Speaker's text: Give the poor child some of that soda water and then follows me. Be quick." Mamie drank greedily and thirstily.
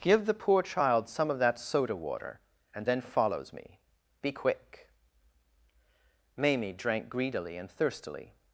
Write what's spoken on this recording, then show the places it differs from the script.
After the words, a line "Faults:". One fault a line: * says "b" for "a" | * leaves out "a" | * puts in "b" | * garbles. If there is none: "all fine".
Give the poor child some of that soda water and then follows me. Be quick." Mamie drank greedily and thirstily.
Faults:
all fine